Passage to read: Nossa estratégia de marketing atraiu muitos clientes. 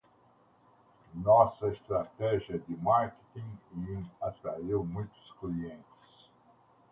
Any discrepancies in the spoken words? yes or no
no